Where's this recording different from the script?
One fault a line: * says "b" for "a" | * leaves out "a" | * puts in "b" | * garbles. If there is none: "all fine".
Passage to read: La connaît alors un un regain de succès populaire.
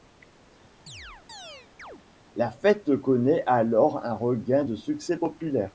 * puts in "fête"
* leaves out "un"